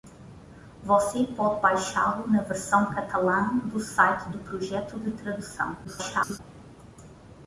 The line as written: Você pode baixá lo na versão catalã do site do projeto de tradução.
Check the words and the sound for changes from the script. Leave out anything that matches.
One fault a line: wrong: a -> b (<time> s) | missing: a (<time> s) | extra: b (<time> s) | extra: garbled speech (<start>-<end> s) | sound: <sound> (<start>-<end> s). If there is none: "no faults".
extra: garbled speech (5.8-6.4 s)